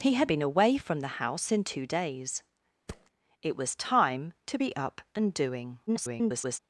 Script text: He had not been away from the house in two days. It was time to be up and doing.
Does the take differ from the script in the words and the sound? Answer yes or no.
yes